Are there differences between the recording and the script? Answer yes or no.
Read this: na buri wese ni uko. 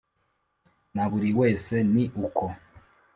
no